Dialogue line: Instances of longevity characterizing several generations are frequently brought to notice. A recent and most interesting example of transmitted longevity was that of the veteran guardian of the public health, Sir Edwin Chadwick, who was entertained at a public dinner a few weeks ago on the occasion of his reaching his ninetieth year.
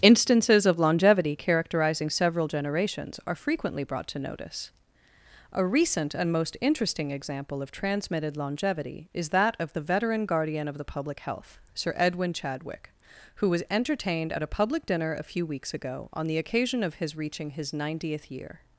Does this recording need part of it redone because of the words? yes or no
yes